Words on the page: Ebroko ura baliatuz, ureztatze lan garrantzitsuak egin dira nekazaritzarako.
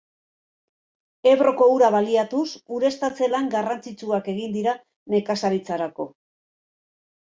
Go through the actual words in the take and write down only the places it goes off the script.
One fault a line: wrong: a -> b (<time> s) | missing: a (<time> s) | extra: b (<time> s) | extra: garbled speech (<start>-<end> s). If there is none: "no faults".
no faults